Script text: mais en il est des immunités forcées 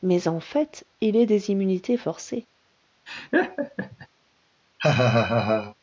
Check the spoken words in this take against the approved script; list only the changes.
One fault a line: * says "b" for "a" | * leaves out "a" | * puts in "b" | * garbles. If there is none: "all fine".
* puts in "fait"